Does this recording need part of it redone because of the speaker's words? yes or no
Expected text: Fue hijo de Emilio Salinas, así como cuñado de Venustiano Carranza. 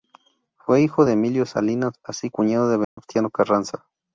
yes